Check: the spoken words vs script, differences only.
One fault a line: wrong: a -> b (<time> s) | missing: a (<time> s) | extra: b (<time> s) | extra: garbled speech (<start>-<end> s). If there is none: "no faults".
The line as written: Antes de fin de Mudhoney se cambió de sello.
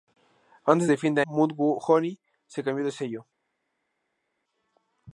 no faults